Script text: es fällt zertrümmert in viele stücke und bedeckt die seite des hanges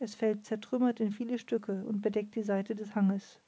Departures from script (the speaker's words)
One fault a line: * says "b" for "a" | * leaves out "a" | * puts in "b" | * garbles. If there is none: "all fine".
all fine